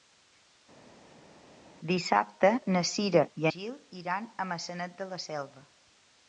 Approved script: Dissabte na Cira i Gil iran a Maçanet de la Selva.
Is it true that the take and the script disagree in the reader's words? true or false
false